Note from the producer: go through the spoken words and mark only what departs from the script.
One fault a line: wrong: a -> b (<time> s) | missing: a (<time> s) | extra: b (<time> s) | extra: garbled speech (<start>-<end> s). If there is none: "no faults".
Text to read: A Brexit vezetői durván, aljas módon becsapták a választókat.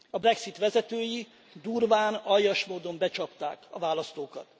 no faults